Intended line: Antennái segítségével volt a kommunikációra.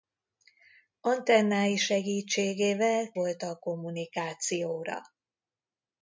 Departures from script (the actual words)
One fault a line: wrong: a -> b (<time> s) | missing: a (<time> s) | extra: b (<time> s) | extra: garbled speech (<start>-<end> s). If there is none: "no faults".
no faults